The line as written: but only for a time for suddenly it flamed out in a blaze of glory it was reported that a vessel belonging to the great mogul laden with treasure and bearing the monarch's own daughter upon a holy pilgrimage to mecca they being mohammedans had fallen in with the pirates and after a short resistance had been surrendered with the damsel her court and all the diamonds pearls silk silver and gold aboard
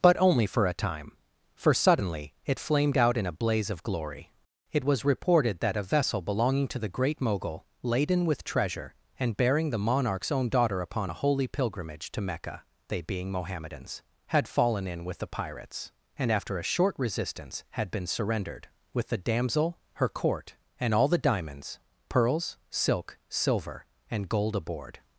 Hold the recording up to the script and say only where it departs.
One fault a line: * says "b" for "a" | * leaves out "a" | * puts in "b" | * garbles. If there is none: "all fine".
all fine